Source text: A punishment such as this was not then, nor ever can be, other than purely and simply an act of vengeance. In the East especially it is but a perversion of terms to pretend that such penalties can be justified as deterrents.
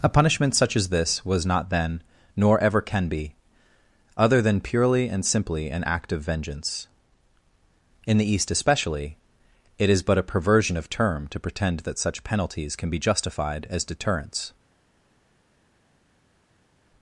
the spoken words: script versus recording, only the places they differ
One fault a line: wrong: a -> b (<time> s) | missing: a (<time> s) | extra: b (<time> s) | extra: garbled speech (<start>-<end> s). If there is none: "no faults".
wrong: terms -> term (10.9 s)